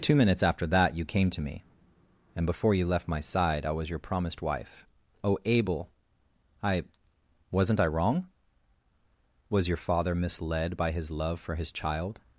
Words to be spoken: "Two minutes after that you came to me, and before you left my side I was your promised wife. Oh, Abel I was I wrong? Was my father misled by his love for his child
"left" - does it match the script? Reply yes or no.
yes